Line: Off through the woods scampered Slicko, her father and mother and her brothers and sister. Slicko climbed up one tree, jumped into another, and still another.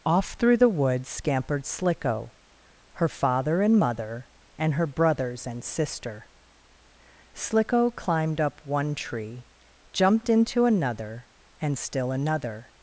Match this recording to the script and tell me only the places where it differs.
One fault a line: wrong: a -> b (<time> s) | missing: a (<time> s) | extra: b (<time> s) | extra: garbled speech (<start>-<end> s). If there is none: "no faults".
no faults